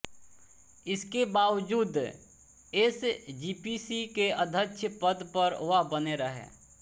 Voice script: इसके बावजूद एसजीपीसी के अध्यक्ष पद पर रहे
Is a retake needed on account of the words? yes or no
yes